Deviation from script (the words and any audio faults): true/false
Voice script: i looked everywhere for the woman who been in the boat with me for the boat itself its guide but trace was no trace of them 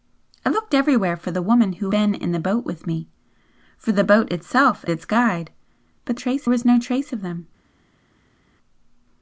false